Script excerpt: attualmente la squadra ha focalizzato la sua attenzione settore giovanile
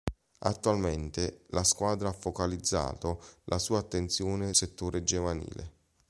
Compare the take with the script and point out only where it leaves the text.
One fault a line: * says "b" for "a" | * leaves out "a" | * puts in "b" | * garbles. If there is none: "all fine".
all fine